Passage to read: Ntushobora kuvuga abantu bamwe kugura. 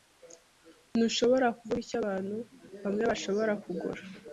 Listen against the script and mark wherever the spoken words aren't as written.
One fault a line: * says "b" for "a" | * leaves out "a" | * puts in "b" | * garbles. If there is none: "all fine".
* puts in "icyo"
* puts in "bashobora"